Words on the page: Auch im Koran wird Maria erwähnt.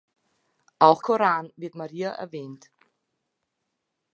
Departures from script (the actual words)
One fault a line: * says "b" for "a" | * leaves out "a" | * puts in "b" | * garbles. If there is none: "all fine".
* leaves out "im"